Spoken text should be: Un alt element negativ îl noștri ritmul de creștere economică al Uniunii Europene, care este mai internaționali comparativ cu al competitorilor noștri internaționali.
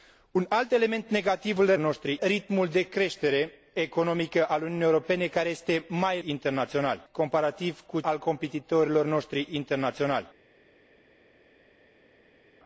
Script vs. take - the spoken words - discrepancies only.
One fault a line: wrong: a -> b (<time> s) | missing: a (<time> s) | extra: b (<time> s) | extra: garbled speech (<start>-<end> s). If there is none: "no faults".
no faults